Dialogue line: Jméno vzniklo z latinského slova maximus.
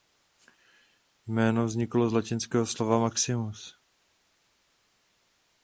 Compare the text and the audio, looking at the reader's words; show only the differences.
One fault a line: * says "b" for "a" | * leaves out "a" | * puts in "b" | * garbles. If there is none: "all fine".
all fine